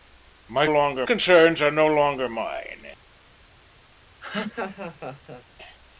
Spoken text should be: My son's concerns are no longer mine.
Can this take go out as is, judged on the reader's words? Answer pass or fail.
fail